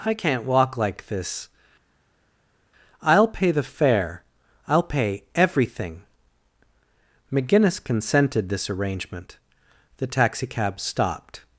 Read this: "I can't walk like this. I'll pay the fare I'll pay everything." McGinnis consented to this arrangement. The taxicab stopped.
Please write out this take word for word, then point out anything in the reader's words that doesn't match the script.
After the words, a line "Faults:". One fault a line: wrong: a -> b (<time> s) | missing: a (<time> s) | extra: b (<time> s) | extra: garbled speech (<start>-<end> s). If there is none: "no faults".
"I can't walk like this. I'll pay the fare I'll pay everything." McGinnis consented this arrangement. The taxicab stopped.
Faults:
missing: to (8.5 s)